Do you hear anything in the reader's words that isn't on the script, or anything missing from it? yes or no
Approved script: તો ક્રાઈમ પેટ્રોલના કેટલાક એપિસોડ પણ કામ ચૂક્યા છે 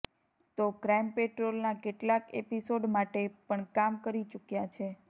yes